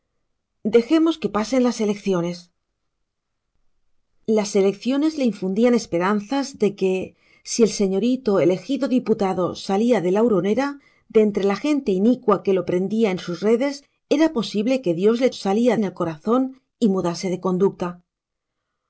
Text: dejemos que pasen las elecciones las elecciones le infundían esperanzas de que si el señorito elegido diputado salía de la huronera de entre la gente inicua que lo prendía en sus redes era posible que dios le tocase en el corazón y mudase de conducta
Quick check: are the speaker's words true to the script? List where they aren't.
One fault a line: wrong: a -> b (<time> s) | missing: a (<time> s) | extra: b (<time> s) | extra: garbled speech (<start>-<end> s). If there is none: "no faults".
wrong: tocase -> salía (15.3 s)